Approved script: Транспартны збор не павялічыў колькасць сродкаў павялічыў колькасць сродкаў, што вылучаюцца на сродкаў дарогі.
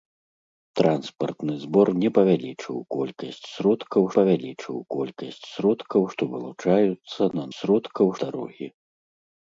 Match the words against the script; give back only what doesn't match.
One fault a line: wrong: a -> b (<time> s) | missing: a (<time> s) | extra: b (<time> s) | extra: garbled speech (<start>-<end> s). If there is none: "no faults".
no faults